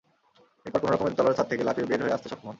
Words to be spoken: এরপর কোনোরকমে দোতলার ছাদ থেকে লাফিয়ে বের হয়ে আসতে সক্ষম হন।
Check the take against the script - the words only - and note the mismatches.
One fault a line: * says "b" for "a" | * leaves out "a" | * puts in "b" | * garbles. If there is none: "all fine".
all fine